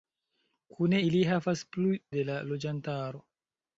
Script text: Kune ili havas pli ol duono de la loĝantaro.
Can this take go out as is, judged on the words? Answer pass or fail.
fail